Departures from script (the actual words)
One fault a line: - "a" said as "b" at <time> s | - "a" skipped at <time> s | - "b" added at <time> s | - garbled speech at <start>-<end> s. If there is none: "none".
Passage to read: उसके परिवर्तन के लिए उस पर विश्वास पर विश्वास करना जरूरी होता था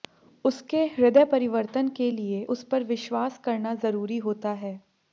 - "हृदय" added at 0.9 s
- "पर विश्वास" skipped at 3.4 s
- "था" said as "है" at 4.6 s